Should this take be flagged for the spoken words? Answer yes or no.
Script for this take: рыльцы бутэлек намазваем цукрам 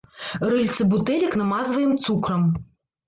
no